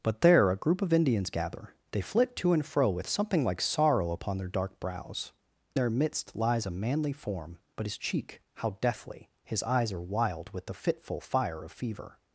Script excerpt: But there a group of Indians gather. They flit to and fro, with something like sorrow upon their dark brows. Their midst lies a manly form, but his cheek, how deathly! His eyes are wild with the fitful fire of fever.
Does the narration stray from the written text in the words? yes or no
no